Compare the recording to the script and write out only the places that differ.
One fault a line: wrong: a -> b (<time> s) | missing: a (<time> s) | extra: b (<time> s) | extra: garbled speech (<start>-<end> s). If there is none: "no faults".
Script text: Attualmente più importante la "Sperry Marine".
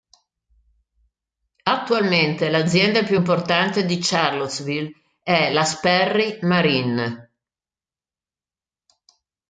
extra: l'azienda (2.5 s)
extra: di Charlottesville è (3.8 s)